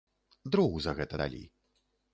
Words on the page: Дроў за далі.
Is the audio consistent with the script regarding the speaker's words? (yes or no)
no